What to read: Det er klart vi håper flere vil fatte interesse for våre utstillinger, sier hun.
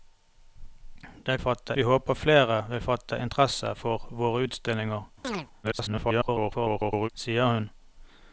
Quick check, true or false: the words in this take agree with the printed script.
false